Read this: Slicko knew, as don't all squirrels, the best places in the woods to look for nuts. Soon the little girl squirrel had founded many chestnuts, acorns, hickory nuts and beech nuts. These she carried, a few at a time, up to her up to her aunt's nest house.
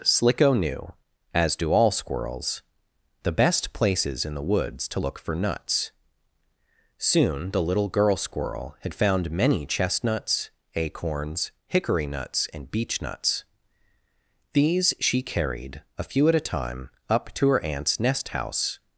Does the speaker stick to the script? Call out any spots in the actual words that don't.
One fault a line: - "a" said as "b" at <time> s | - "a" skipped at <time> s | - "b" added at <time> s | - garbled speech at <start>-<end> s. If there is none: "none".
- "don't" said as "do" at 1.6 s
- "founded" said as "found" at 8.9 s
- "up to her" skipped at 17.6 s